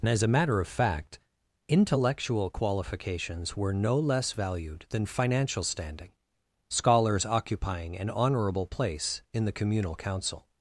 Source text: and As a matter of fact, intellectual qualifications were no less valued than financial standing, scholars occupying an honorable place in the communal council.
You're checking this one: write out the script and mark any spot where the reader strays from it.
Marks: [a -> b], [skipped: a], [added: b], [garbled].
and As a matter of fact, intellectual qualifications were no less valued than financial standing, scholars occupying an honorable place in the communal council.